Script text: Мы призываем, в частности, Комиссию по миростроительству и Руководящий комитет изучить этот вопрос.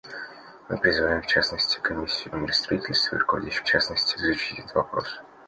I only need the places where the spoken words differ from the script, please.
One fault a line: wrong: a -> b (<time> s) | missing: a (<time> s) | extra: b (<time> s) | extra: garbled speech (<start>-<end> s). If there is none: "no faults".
missing: по (2.3 s)
wrong: комитет -> частности (3.6 s)